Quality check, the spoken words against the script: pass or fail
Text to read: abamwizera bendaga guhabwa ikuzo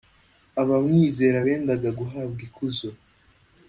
pass